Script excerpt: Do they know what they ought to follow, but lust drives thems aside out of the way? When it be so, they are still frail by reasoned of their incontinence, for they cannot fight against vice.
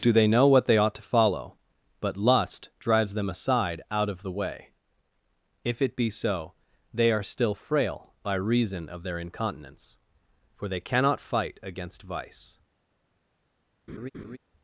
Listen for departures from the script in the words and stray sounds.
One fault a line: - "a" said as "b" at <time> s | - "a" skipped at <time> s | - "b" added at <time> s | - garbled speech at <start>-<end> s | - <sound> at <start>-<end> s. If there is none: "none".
- "thems" said as "them" at 3.1 s
- "When" said as "If" at 5.6 s
- "reasoned" said as "reason" at 8.3 s
- laugh at 13.9-14.4 s